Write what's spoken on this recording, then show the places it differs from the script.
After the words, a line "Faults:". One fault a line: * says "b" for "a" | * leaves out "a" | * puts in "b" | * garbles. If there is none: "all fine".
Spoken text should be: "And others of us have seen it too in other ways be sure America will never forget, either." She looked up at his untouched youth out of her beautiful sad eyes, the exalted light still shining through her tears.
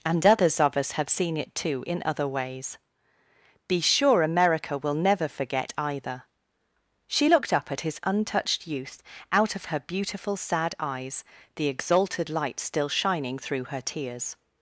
"And others of us have seen it too in other ways be sure America will never forget, either." She looked up at his untouched youth out of her beautiful sad eyes, the exalted light still shining through her tears.
Faults:
all fine